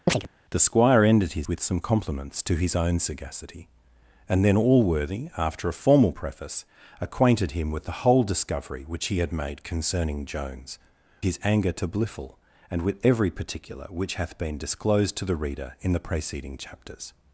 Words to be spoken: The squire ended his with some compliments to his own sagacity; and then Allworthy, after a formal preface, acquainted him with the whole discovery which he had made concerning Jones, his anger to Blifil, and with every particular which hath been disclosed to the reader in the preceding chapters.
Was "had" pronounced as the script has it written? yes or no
yes